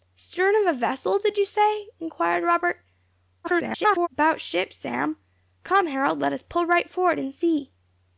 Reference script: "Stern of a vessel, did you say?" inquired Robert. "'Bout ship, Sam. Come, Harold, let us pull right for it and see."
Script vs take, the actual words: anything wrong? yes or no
yes